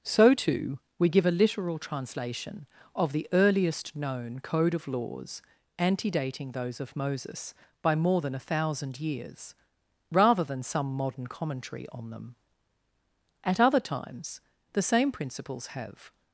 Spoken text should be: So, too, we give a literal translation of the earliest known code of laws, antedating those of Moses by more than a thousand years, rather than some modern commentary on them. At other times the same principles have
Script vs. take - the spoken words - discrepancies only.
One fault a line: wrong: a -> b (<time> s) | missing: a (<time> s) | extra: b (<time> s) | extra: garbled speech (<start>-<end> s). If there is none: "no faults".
no faults